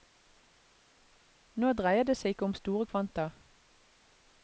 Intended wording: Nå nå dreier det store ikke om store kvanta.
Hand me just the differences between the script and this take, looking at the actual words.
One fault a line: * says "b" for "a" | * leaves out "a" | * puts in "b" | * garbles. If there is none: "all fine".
* leaves out "nå"
* says "seg" for "store"